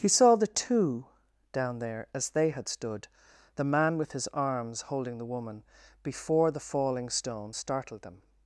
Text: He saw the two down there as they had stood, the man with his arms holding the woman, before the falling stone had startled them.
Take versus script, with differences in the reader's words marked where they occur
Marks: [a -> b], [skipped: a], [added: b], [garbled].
He saw the two down there as they had stood, the man with his arms holding the woman, before the falling stone [skipped: had] startled them.